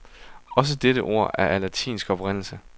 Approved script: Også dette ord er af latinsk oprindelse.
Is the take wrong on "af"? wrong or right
right